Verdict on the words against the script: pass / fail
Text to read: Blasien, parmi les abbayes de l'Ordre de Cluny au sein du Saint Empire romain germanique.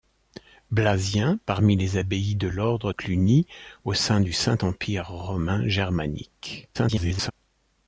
fail